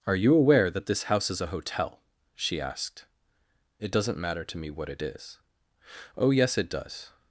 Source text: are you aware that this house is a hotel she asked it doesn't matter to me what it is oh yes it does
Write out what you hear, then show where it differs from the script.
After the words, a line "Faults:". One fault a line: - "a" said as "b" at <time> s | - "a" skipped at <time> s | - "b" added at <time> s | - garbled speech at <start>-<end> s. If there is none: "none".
are you aware that this house is a hotel she asked it doesn't matter to me what it is oh yes it does
Faults:
none